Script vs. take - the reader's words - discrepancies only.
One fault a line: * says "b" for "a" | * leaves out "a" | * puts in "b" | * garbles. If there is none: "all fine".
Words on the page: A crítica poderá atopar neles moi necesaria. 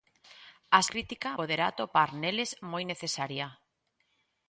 all fine